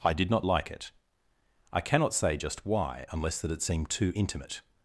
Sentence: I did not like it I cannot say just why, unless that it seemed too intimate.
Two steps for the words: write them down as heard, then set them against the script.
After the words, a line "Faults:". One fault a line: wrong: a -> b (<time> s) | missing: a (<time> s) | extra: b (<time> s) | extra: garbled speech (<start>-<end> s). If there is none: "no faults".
I did not like it I cannot say just why, unless that it seemed too intimate.
Faults:
no faults